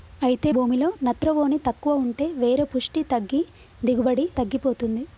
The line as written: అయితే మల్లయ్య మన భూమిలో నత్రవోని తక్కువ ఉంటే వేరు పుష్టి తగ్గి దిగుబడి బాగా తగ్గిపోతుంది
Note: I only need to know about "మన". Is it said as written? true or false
false